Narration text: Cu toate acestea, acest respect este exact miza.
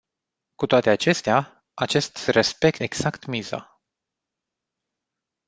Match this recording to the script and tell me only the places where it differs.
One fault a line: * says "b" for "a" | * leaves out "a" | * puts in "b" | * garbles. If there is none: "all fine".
* leaves out "este"